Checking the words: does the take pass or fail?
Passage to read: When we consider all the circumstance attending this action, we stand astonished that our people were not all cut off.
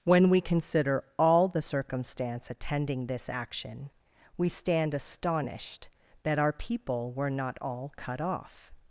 pass